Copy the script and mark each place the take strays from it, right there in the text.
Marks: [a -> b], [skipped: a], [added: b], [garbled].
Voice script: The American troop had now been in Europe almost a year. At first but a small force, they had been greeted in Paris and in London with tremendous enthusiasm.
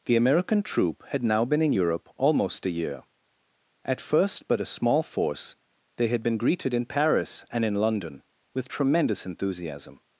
The American troop had now been in Europe almost a year. At first but a small force, they had been greeted in Paris and in London with tremendous enthusiasm.